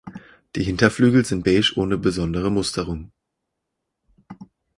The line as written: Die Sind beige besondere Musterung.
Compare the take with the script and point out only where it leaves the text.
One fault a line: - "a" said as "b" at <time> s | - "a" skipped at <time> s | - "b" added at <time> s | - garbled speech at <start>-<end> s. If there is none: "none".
- "Hinterflügel" added at 0.6 s
- "ohne" added at 1.8 s